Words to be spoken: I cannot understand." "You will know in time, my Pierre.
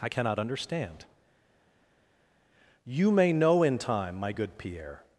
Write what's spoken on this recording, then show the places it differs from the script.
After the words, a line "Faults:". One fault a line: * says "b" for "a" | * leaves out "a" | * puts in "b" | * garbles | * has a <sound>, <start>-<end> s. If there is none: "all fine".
I cannot understand." "You may know in time, my good Pierre.
Faults:
* says "may" for "will"
* puts in "good"